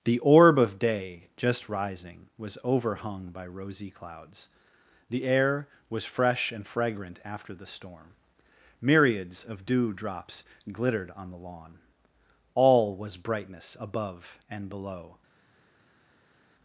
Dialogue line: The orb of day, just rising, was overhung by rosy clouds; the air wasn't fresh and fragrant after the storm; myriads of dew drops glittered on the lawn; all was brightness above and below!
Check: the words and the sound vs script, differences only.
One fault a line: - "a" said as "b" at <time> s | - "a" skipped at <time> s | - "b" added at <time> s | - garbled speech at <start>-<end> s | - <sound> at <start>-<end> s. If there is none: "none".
- "wasn't" said as "was" at 5.9 s